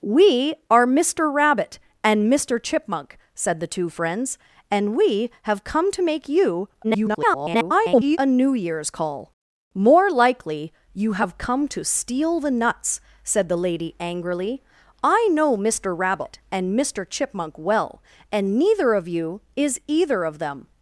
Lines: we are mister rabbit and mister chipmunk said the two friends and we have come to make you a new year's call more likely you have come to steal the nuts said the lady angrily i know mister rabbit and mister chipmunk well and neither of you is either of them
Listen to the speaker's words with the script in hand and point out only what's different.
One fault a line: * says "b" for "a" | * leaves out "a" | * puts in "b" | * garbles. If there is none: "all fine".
* garbles